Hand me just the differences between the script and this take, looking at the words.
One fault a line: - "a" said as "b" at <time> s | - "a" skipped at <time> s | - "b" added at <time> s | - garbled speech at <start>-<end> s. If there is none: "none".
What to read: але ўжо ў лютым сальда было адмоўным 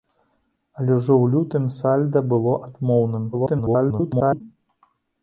- garbled speech at 3.3-4.4 s